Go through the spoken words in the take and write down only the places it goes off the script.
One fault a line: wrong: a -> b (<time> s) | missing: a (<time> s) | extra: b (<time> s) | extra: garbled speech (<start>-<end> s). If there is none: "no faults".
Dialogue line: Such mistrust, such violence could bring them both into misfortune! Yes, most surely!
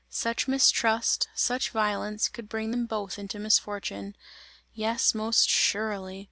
no faults